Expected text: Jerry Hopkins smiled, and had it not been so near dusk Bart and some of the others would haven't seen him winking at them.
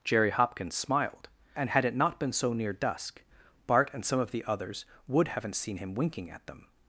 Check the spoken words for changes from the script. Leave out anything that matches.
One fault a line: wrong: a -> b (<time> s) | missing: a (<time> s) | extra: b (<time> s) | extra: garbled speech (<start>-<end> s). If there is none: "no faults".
no faults